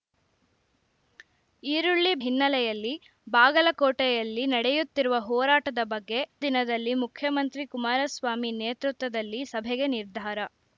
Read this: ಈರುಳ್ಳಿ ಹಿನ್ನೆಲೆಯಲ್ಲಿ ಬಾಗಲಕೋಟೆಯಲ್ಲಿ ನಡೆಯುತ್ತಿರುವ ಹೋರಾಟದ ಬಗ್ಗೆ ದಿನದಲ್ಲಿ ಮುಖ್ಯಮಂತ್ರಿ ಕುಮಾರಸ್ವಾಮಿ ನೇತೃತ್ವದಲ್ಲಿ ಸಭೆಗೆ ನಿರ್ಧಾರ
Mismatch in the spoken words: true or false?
false